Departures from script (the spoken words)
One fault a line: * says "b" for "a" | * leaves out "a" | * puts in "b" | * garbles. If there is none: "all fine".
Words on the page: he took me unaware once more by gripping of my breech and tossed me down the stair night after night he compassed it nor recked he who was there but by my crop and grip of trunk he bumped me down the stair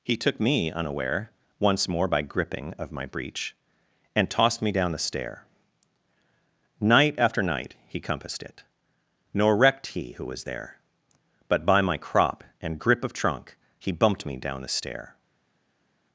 all fine